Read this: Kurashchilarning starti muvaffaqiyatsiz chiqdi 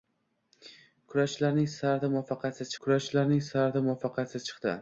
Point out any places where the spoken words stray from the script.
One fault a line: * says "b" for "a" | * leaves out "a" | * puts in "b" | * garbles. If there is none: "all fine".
* puts in "kurashchilarning starti muvaffaqiyatsiz"